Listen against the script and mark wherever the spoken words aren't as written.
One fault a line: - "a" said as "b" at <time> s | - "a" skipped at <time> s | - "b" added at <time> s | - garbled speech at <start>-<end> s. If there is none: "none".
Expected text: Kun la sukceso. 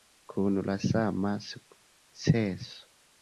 - "sama" added at 0.8 s